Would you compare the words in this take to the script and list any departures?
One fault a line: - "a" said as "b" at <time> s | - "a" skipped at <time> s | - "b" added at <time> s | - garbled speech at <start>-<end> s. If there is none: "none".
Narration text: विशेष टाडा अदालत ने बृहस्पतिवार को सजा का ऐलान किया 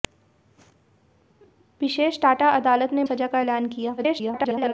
- "बृहस्पतिवार को" skipped at 3.0 s
- garbled speech at 4.0-4.7 s